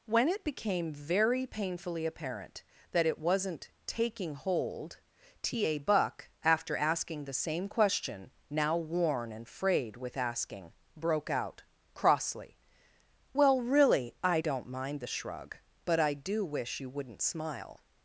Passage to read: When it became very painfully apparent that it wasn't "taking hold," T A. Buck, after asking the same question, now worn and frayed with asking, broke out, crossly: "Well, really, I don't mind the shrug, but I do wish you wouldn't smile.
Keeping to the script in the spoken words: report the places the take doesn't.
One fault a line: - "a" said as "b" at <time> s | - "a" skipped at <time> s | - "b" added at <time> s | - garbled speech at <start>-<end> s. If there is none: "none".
none